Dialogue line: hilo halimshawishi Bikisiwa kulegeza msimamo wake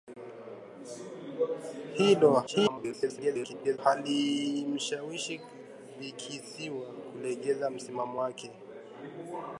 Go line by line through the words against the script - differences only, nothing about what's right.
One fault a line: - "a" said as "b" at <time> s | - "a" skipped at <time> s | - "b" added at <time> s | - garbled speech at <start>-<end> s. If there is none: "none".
- garbled speech at 2.5-3.8 s